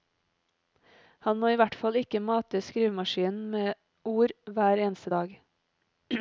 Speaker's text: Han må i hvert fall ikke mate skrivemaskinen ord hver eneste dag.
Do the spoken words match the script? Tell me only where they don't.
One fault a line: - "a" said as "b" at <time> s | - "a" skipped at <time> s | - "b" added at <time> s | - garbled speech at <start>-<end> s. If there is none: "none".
- "med" added at 3.5 s